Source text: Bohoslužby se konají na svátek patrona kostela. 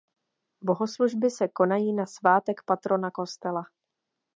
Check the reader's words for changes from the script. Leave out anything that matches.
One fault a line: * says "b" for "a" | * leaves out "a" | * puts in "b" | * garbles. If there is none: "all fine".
all fine